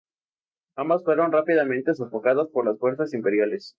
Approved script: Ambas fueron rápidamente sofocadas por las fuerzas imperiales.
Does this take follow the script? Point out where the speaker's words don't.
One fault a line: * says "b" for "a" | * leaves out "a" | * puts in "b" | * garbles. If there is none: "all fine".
all fine